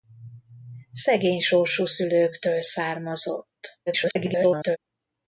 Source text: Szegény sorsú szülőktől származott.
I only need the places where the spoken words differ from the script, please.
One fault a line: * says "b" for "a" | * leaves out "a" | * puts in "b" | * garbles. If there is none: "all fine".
* garbles